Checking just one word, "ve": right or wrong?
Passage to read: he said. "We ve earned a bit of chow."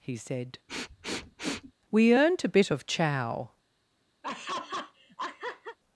wrong